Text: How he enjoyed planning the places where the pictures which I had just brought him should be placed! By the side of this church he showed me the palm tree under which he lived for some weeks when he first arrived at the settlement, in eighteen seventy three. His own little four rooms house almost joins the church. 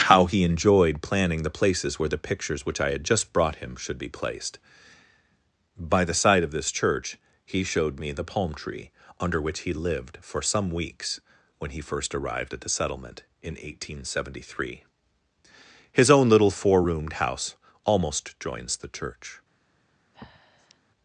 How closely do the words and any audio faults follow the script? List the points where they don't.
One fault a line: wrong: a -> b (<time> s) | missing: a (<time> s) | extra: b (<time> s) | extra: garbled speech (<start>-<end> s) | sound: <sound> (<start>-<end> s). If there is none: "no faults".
wrong: rooms -> roomed (16.8 s)
sound: breath (20.1-20.8 s)